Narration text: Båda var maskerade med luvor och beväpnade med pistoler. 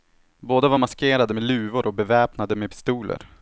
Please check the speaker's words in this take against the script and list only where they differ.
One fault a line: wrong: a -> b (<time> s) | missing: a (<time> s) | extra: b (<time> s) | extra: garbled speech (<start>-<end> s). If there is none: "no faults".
no faults